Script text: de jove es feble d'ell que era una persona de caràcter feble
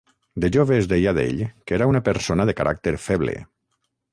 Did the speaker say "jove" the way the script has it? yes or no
yes